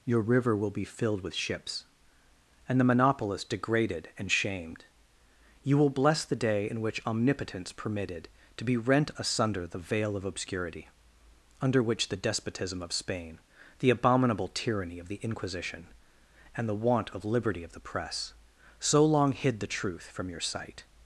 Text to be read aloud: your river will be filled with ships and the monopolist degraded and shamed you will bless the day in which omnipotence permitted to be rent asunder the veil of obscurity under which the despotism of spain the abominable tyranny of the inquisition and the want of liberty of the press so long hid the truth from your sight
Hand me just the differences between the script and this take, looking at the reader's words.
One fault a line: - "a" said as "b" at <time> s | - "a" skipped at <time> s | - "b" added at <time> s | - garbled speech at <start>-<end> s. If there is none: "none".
none